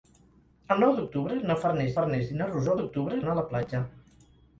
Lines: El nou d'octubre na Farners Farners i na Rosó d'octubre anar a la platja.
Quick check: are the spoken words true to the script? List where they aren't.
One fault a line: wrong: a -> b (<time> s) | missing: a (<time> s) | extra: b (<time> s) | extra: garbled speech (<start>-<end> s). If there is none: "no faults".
no faults